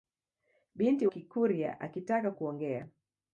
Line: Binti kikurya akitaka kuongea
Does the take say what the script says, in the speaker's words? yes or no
yes